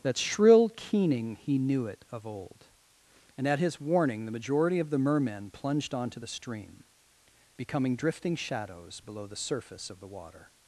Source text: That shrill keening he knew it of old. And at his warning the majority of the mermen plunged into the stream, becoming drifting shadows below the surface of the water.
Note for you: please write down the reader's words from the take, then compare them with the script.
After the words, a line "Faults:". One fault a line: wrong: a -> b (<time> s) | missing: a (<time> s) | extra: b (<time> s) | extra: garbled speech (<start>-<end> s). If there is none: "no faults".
That shrill keening he knew it of old. And at his warning the majority of the mermen plunged onto the stream, becoming drifting shadows below the surface of the water.
Faults:
wrong: into -> onto (5.9 s)